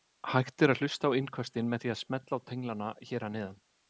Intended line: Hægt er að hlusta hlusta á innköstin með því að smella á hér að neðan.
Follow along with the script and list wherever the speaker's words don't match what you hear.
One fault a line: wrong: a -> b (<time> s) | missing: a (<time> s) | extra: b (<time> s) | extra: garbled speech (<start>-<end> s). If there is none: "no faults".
missing: hlusta (1.1 s)
extra: tenglana (2.5 s)